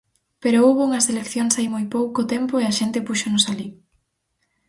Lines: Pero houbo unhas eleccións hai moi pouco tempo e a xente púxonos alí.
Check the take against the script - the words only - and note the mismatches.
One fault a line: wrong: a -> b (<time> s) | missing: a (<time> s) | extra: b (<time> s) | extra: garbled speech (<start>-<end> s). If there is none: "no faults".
no faults